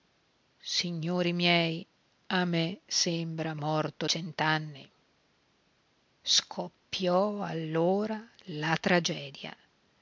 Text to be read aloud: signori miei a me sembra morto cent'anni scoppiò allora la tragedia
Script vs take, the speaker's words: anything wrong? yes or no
no